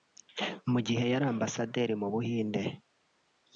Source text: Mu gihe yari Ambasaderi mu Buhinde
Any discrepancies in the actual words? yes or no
no